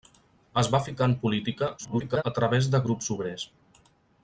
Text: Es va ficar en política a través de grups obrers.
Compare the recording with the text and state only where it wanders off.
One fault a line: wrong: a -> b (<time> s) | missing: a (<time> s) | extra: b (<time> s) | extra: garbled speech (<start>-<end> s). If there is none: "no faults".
extra: garbled speech (1.8-2.2 s)